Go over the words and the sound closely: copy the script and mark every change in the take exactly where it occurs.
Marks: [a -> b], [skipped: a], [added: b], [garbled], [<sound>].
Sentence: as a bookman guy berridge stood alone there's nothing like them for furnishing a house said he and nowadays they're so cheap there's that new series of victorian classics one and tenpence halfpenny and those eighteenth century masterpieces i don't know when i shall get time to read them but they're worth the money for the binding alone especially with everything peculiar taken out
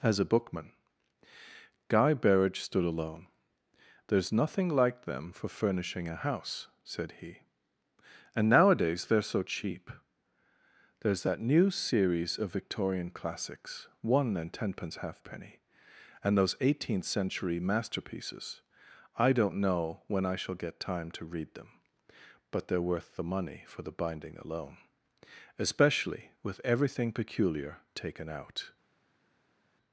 as a bookman guy berridge stood alone there's nothing like them for furnishing a house said he and nowadays they're so cheap there's that new series of victorian classics one and tenpence halfpenny and those eighteenth century masterpieces i don't know when i shall get time to read them but they're worth the money for the binding alone especially with everything peculiar taken out